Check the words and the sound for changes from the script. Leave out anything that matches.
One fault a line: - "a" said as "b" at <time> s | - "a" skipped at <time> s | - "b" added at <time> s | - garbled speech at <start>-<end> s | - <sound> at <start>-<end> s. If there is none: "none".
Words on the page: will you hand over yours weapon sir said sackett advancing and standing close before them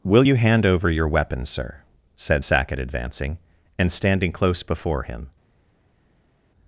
- "yours" said as "your" at 0.9 s
- "them" said as "him" at 5.0 s